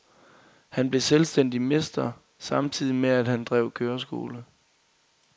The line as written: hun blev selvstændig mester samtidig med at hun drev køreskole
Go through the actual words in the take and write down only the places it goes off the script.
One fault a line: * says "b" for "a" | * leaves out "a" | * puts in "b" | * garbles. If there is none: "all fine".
* says "han" for "hun"
* says "han" for "hun"